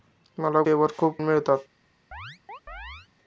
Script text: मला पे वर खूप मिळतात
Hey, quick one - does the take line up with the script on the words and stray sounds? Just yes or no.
no